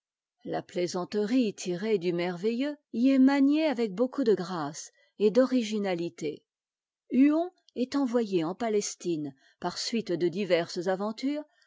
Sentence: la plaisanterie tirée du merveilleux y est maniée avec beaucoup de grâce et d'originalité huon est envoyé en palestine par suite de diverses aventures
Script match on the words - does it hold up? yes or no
yes